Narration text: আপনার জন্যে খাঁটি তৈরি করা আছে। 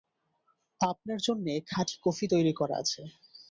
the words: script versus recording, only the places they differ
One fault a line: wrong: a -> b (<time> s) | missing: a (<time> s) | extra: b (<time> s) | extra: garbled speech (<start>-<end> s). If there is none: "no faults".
extra: কফি (2.0 s)